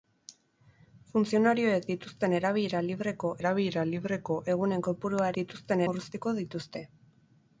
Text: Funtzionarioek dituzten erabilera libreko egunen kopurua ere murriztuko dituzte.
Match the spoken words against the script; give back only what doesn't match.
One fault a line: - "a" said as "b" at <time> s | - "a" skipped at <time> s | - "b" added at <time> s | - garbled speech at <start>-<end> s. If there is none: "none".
- "erabilera libreko" added at 3.4 s
- "ere" said as "dituzten" at 5.4 s